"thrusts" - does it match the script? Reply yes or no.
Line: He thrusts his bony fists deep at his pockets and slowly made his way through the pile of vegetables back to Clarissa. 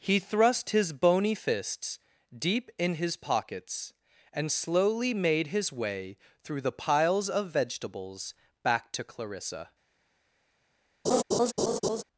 no